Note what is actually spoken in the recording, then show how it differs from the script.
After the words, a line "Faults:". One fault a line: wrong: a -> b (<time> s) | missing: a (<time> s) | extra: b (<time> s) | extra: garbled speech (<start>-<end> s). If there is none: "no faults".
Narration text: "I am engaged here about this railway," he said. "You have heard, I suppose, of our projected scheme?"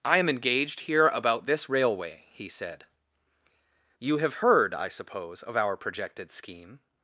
"I am engaged here about this railway," he said. "You have heard, I suppose, of our projected scheme?"
Faults:
no faults